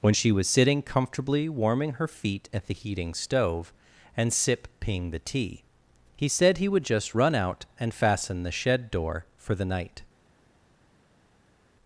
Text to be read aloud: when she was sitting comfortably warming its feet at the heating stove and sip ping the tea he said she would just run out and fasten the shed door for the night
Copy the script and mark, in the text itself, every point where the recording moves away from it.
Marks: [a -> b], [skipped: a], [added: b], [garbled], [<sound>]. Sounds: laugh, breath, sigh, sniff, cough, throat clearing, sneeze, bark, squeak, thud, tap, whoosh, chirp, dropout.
when she was sitting comfortably warming [its -> her] feet at the heating stove and sip ping the tea he said [she -> he] would just run out and fasten the shed door for the night